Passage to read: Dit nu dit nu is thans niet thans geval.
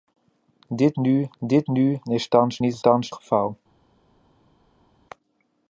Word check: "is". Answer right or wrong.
right